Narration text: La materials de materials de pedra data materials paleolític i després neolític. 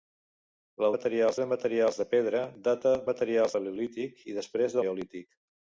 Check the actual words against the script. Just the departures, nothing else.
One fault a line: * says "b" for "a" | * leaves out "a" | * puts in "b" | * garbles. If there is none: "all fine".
all fine